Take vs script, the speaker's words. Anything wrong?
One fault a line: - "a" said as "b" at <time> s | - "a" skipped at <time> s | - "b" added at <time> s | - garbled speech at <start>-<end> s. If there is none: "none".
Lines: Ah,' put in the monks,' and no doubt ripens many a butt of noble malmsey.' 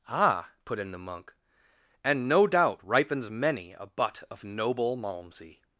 - "monks" said as "monk" at 1.0 s